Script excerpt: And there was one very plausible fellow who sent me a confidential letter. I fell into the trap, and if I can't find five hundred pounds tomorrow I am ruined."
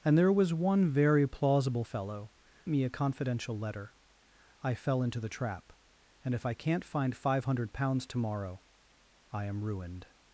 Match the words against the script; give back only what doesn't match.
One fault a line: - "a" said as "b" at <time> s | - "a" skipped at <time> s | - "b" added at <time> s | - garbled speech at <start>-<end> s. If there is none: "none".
- "who sent" skipped at 2.3 s